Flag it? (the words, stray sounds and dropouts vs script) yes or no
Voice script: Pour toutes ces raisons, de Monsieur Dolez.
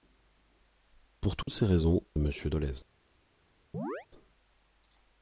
yes